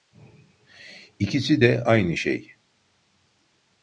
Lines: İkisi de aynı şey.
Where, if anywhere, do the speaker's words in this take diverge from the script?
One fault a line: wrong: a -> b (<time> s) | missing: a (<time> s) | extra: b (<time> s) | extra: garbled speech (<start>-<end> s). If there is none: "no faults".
no faults